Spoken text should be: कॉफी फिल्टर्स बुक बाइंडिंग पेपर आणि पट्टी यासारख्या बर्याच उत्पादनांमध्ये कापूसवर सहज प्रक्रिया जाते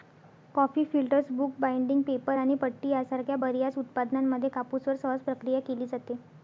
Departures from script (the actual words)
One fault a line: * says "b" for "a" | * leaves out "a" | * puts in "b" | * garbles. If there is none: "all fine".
* puts in "केली"